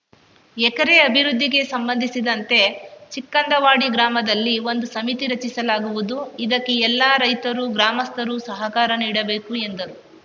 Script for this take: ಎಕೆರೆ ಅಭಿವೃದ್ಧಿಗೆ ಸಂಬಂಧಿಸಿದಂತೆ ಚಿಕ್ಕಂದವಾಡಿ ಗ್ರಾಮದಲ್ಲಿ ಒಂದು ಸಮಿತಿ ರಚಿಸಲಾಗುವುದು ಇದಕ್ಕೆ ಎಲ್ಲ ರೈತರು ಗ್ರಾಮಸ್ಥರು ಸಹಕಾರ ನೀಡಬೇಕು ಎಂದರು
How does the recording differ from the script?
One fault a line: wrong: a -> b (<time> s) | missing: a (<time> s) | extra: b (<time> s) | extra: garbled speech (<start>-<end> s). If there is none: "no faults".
no faults